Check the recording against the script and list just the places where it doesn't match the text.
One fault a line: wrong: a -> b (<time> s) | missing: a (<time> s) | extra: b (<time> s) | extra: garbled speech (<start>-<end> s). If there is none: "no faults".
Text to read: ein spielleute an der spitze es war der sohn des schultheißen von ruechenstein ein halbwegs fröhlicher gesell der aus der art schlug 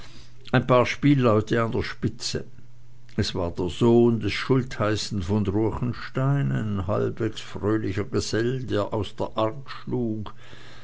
extra: paar (0.7 s)